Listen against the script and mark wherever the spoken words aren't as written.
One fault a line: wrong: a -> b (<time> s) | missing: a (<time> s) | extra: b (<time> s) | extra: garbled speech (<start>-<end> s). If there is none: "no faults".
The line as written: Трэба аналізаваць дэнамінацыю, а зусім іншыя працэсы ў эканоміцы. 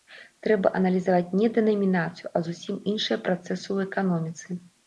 extra: не (1.4 s)